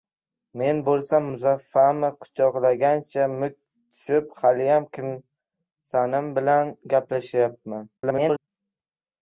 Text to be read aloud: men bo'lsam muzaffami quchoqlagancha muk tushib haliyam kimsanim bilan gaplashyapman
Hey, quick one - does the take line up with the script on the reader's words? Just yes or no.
no